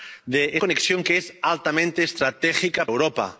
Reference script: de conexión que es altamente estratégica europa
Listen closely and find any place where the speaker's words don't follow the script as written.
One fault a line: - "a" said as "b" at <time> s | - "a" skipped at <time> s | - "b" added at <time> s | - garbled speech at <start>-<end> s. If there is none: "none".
none